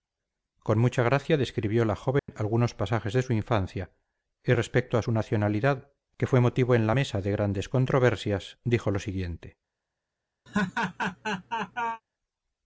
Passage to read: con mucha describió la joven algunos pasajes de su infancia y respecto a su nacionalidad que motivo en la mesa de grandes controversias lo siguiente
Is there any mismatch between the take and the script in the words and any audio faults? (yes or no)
yes